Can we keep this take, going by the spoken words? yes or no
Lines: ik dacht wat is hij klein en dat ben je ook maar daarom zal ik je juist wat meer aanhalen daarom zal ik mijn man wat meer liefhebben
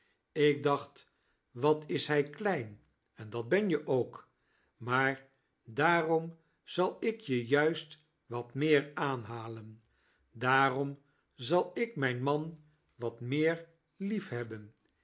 yes